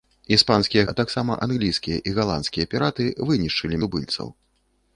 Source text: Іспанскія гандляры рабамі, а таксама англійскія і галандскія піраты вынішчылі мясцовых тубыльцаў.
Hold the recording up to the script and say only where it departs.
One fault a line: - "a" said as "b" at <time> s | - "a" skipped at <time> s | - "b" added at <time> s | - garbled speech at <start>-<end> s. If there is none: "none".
- "гандляры рабамі" skipped at 0.8 s
- "мясцовых" skipped at 3.8 s